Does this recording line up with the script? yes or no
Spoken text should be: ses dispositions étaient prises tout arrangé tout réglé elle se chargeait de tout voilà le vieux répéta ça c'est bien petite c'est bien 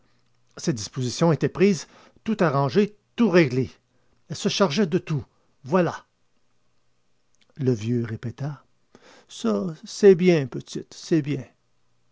yes